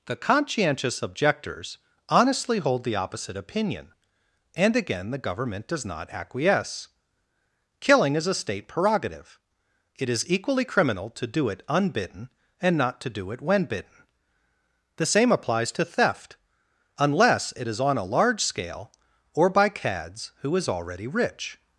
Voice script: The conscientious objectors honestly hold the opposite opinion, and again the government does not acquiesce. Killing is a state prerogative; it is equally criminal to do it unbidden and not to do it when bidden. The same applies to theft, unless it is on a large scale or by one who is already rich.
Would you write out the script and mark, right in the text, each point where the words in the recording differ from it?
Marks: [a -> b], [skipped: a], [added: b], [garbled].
The conscientious objectors honestly hold the opposite opinion, and again the government does not acquiesce. Killing is a state prerogative; it is equally criminal to do it unbidden and not to do it when bidden. The same applies to theft, unless it is on a large scale or by [one -> cads] who is already rich.